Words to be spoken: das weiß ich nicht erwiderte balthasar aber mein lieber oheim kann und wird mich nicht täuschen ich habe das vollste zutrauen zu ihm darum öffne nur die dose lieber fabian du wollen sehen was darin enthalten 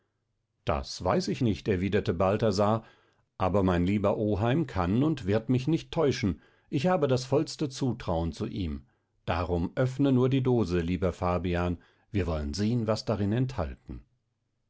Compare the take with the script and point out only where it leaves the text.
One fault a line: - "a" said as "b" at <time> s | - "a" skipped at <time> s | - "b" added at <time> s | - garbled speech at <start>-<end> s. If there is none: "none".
- "du" said as "wir" at 12.1 s